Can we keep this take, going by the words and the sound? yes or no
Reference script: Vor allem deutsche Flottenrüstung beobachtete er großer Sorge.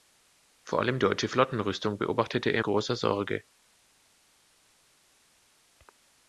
yes